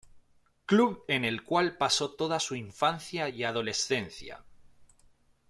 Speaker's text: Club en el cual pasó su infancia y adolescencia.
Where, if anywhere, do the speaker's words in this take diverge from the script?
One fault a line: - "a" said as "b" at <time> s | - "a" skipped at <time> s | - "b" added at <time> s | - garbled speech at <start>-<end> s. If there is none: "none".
- "toda" added at 2.1 s